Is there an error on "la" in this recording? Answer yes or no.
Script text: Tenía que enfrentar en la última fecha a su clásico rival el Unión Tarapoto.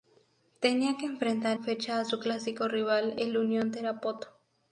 yes